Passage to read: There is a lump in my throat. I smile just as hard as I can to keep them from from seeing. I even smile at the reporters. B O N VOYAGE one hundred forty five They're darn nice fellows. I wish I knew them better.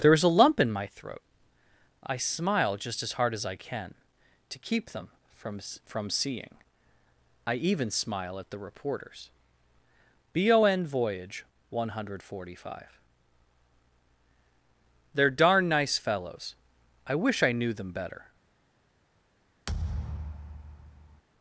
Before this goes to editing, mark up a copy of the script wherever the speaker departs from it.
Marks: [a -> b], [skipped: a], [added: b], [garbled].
There is a lump in my throat. I smile just as hard as I can to keep them from from seeing. I even smile at the reporters. B O N VOYAGE one hundred forty five They're darn nice fellows. I wish I knew them better.